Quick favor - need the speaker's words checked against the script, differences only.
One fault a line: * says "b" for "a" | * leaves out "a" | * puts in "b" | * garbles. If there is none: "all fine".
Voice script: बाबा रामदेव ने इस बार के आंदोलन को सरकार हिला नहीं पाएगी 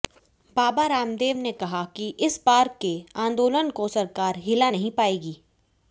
* puts in "कहा कि"